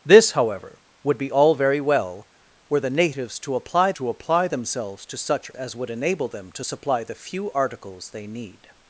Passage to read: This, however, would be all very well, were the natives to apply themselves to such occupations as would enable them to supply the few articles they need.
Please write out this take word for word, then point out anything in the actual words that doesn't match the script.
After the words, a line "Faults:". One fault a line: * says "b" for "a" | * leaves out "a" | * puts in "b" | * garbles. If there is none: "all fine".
This, however, would be all very well, were the natives to apply to apply themselves to such as would enable them to supply the few articles they need.
Faults:
* puts in "to apply"
* leaves out "occupations"